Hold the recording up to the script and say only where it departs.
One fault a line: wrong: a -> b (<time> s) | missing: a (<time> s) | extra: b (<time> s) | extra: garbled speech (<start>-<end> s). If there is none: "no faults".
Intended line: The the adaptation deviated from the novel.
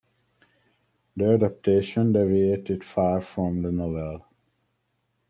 missing: the (1.4 s)
extra: far (2.8 s)